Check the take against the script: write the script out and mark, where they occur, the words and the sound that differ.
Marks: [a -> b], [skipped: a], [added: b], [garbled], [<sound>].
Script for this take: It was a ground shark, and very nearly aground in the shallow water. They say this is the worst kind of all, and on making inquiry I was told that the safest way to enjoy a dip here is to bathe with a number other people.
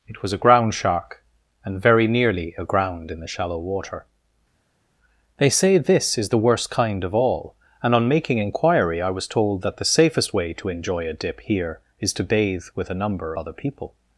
It was a ground shark, and very nearly aground in the shallow water. They say this is the worst kind of all, and on making inquiry I was told that the safest way to enjoy a dip here is to bathe with a number other people.